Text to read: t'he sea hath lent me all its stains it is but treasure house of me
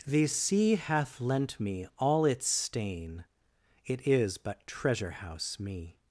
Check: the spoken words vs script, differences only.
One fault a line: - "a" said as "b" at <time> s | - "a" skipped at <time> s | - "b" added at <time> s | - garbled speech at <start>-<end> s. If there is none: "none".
- "stains" said as "stain" at 2.5 s
- "of" skipped at 5.6 s